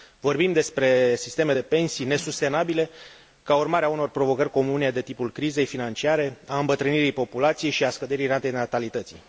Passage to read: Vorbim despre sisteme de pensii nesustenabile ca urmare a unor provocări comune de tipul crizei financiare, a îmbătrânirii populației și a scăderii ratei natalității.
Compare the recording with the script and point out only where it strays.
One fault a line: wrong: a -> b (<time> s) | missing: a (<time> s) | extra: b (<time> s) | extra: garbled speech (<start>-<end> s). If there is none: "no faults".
no faults